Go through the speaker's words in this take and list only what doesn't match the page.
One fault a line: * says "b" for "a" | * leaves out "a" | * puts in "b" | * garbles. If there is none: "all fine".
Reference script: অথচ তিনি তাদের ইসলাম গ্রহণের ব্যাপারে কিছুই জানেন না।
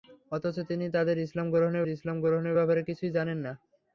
* puts in "ইসলাম গ্রহণের"